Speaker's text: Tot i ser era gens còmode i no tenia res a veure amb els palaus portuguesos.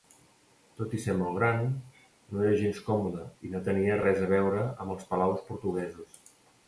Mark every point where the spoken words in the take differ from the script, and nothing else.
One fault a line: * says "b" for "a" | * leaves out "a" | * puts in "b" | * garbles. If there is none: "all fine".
* puts in "molt gran no"